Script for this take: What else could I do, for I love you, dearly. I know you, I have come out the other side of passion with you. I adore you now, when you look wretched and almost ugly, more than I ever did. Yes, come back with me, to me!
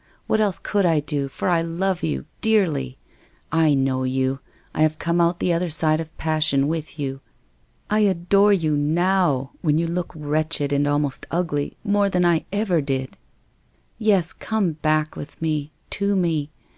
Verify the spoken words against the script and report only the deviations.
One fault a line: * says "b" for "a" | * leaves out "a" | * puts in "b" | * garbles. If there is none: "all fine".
all fine